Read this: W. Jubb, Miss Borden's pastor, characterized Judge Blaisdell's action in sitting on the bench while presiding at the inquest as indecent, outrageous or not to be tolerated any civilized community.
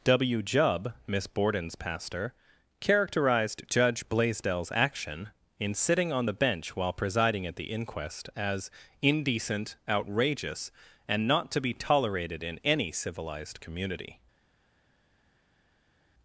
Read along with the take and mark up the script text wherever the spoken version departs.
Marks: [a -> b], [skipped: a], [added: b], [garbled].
W. Jubb, Miss Borden's pastor, characterized Judge Blaisdell's action in sitting on the bench while presiding at the inquest as indecent, outrageous [or -> and] not to be tolerated [added: in] any civilized community.